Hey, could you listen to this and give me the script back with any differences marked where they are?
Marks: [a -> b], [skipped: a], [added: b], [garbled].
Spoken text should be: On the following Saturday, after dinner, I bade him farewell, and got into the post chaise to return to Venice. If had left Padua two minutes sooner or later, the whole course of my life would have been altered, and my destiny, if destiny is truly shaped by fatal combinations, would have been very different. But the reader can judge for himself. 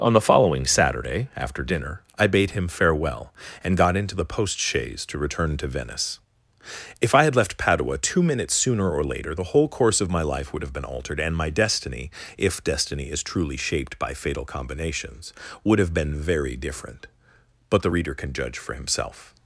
On the following Saturday, after dinner, I bade him farewell, and got into the post chaise to return to Venice. If [added: I] had left Padua two minutes sooner or later, the whole course of my life would have been altered, and my destiny, if destiny is truly shaped by fatal combinations, would have been very different. But the reader can judge for himself.